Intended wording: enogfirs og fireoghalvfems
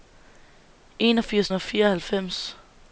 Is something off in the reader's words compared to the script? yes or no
no